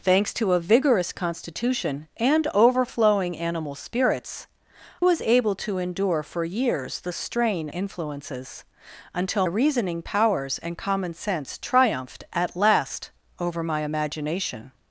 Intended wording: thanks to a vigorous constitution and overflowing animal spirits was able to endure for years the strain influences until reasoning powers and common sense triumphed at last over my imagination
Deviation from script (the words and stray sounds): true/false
false